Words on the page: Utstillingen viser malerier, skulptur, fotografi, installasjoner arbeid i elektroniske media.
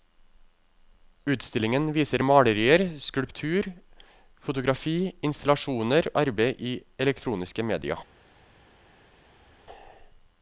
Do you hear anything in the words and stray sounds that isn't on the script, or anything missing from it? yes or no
no